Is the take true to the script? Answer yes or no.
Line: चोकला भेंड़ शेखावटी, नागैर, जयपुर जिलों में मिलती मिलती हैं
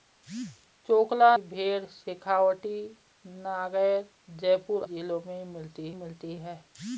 yes